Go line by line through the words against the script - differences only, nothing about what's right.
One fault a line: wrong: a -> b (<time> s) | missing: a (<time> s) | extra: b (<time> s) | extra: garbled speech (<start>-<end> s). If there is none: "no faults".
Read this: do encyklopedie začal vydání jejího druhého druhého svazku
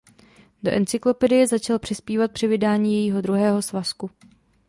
extra: přispívat při (1.8 s)
missing: druhého (3.6 s)